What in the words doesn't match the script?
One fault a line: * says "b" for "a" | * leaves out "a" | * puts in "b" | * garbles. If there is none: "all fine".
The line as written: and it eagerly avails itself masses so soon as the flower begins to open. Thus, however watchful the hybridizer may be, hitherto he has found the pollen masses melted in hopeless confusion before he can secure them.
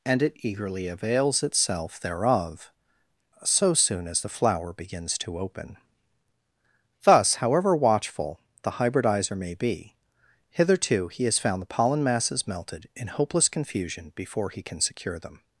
* says "thereof" for "masses"